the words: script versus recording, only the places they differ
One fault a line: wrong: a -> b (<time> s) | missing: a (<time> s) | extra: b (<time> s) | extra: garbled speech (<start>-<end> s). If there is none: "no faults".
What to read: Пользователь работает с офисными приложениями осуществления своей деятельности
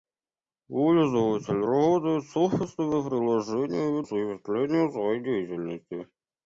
no faults